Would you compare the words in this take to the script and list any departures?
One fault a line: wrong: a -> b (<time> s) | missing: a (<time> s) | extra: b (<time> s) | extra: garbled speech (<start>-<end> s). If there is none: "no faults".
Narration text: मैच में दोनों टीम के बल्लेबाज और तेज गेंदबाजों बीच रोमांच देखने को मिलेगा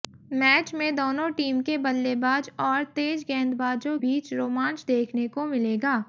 no faults